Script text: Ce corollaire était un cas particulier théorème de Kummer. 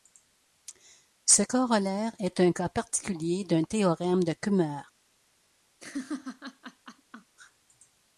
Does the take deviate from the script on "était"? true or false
true